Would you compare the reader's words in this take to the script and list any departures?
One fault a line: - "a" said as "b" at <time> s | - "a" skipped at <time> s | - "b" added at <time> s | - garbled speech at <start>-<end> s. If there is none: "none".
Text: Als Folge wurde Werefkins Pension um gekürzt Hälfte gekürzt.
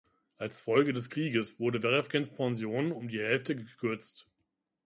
- "des Krieges" added at 0.9 s
- "gekürzt" said as "die" at 3.1 s